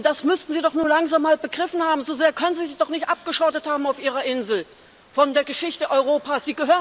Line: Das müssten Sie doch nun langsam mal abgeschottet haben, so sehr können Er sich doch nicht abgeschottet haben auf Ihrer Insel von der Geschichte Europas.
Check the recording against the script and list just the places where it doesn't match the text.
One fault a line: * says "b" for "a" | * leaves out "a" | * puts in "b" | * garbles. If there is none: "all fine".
* says "begriffen" for "abgeschottet"
* says "Sie" for "Er"